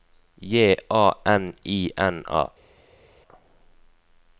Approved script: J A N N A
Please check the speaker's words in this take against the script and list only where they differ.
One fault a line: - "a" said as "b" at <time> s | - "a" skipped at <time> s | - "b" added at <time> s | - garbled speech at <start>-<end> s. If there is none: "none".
- "I" added at 1.6 s